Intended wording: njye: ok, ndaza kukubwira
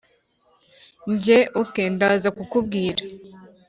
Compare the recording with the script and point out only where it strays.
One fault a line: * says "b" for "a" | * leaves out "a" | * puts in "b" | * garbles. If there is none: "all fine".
all fine